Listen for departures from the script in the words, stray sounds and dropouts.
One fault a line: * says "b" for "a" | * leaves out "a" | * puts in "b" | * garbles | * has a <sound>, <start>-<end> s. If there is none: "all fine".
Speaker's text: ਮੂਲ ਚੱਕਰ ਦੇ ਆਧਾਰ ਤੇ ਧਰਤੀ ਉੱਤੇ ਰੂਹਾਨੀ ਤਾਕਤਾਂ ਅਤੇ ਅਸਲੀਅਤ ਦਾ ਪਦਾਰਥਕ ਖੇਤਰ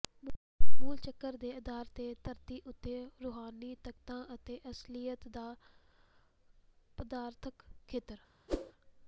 * has a whoosh, 8.5-8.7 s